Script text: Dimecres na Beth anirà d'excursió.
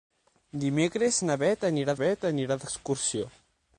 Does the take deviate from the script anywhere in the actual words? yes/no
yes